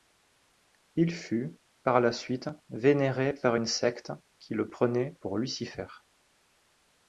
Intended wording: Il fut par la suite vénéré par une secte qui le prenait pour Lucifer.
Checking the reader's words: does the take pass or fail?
pass